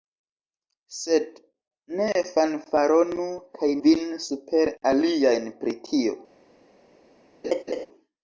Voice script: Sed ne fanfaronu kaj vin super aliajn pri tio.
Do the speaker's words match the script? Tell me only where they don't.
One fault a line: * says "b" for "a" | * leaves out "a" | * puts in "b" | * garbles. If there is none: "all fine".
all fine